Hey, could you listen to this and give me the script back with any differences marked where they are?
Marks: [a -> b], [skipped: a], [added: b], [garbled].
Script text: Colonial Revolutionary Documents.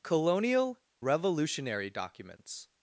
Colonial Revolutionary Documents.